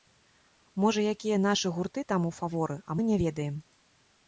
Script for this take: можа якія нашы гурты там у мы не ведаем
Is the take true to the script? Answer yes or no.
no